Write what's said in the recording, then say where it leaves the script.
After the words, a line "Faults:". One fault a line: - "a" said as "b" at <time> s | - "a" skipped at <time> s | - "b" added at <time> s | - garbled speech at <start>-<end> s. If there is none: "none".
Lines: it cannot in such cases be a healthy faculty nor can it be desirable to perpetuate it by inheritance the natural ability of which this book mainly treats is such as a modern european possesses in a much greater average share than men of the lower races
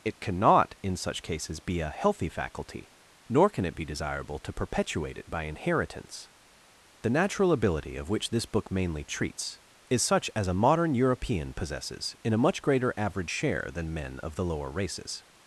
it cannot in such cases be a healthy faculty nor can it be desirable to perpetuate it by inheritance the natural ability of which this book mainly treats is such as a modern european possesses in a much greater average share than men of the lower races
Faults:
none